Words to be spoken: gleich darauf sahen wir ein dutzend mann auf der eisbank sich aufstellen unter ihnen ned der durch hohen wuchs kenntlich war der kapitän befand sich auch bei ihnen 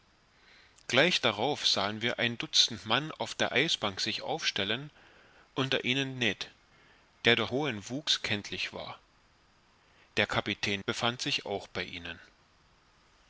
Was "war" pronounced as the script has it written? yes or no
yes